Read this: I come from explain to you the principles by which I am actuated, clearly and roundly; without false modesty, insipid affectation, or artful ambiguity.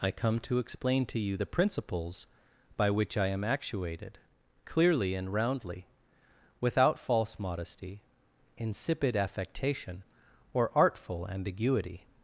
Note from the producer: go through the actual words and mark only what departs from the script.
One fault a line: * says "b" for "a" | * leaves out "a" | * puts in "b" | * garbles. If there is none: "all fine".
* says "to" for "from"